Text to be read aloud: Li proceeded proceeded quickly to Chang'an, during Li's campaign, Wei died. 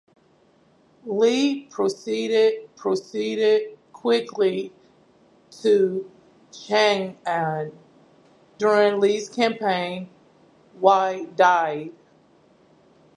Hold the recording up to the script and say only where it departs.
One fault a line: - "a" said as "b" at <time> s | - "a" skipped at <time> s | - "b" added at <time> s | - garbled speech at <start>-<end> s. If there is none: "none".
none